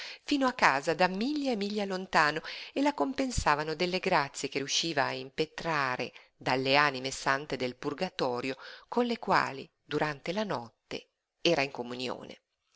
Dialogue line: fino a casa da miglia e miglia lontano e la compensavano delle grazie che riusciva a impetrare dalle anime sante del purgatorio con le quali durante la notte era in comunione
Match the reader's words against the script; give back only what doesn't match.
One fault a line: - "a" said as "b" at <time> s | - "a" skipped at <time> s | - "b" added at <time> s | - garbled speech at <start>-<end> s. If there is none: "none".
none